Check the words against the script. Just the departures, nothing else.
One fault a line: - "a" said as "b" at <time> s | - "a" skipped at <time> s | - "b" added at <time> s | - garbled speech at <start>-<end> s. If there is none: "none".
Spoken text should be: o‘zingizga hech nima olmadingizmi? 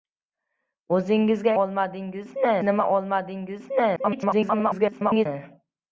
- "hech" said as "olmadingizmi" at 1.6 s
- garbled speech at 4.0-5.3 s